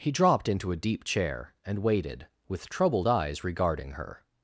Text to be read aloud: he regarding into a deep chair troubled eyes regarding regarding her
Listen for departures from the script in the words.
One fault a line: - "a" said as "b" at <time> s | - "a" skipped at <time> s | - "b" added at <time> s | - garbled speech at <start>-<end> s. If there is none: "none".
- "regarding" said as "dropped" at 0.1 s
- "and waited with" added at 1.6 s
- "regarding" skipped at 3.9 s